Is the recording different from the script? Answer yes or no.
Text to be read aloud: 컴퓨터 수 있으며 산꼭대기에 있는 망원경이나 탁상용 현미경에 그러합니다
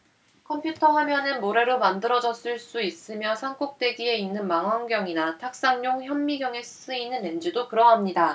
yes